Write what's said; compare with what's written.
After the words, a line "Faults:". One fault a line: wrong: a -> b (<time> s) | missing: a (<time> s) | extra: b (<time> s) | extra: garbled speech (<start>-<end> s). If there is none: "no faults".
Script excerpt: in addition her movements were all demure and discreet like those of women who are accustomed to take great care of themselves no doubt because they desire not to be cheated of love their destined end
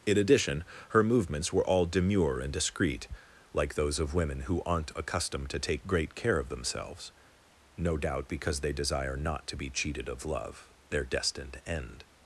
in addition her movements were all demure and discreet like those of women who aren't accustomed to take great care of themselves no doubt because they desire not to be cheated of love their destined end
Faults:
wrong: are -> aren't (4.6 s)